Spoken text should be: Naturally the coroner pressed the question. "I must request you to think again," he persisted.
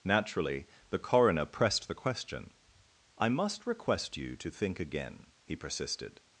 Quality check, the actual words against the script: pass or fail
pass